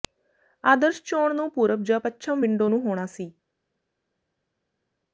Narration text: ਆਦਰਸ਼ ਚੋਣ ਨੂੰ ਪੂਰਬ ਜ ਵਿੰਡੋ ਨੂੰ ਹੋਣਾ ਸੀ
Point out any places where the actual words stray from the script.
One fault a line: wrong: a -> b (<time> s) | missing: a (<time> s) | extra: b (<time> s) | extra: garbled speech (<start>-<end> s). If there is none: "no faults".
extra: ਪੱਛਮ (2.0 s)